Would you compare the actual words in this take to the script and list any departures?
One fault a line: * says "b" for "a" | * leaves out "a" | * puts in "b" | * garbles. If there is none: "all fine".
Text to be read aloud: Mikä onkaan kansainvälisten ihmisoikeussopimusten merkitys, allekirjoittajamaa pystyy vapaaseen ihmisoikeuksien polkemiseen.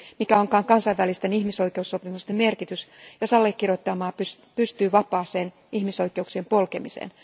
* puts in "jos"